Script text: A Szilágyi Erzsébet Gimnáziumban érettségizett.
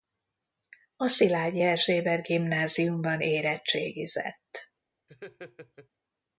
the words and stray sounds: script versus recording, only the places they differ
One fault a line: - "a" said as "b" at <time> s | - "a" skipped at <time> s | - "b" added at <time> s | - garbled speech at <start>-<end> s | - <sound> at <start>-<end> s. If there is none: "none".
- laugh at 5.1-5.9 s